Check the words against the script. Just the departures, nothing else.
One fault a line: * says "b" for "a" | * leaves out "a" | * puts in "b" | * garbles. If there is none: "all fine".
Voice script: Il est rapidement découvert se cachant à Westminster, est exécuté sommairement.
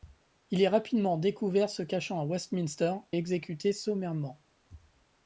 all fine